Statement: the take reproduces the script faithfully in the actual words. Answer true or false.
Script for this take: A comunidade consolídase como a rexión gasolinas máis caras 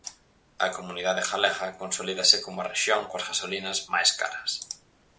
false